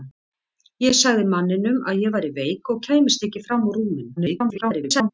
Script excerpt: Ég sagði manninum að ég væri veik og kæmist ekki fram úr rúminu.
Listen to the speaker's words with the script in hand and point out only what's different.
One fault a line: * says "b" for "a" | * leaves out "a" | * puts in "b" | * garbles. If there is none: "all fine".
* garbles